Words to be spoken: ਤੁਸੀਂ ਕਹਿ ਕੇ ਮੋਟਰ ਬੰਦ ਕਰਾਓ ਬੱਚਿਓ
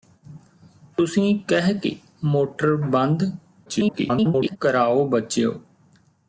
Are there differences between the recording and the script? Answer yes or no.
yes